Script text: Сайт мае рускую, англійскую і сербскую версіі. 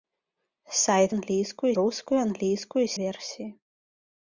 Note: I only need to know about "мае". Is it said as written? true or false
false